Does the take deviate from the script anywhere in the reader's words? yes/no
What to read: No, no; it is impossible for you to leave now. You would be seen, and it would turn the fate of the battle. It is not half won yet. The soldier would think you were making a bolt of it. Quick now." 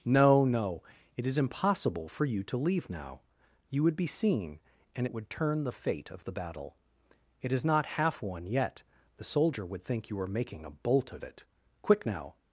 no